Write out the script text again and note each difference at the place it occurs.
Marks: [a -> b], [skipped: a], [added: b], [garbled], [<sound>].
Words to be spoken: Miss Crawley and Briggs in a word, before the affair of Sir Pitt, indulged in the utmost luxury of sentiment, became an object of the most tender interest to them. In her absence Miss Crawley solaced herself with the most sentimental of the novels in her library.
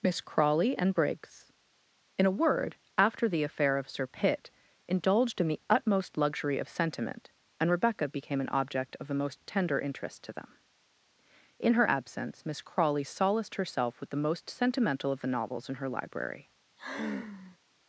Miss Crawley and Briggs in a word, [before -> after] the affair of Sir Pitt, indulged in the utmost luxury of sentiment, [added: and Rebecca] became an object of the most tender interest to them. In her absence Miss Crawley solaced herself with the most sentimental of the novels in her library. [sigh]